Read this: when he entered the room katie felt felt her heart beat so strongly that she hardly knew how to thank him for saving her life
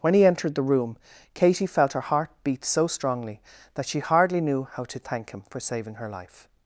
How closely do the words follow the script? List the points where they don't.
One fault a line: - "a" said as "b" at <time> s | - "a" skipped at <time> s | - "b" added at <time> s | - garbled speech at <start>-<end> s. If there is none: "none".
- "felt" skipped at 1.9 s